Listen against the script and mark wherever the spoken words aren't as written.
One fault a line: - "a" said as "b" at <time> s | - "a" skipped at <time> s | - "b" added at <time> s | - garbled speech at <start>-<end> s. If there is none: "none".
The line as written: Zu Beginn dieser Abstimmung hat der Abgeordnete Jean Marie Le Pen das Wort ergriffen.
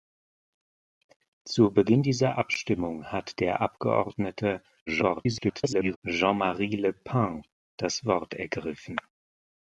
- garbled speech at 4.9-6.0 s